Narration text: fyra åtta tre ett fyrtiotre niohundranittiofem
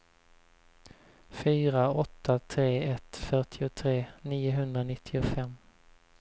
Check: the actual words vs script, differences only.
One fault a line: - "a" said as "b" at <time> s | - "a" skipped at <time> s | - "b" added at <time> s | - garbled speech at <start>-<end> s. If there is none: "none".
none